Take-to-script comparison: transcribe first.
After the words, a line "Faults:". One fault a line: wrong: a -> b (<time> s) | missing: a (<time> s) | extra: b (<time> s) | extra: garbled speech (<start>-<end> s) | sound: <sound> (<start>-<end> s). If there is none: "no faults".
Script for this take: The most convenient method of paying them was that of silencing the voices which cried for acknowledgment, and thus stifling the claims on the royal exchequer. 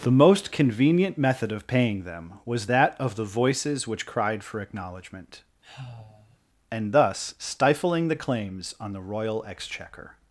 The most convenient method of paying them was that of the voices which cried for acknowledgment, and thus stifling the claims on the royal exchequer.
Faults:
missing: silencing (3.2 s)
sound: sigh (5.6-6.4 s)